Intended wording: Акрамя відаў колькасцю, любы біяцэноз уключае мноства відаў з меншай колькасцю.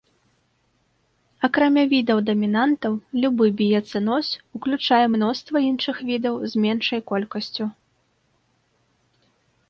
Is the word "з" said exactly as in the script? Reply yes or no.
yes